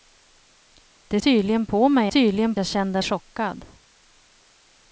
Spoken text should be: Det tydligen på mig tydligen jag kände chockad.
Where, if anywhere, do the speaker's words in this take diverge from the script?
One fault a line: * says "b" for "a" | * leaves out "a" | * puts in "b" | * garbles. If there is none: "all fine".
all fine